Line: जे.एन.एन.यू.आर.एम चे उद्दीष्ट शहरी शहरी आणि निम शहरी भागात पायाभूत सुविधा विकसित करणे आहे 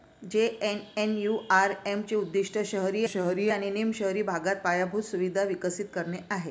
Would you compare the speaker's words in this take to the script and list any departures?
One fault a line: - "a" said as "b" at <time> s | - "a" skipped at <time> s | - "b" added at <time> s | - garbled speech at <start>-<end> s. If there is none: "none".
none